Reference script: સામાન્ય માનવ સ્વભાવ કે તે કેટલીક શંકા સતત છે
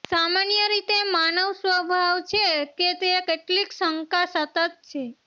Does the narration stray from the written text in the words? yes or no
yes